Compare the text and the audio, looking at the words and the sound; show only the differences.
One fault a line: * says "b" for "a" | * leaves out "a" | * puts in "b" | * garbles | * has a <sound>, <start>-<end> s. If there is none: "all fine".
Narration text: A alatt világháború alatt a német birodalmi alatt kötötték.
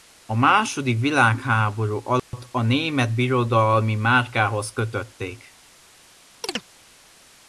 * says "második" for "alatt"
* has a dropout, 2.2-2.3 s
* says "márkához" for "alatt"
* has a chirp, 6.4-6.6 s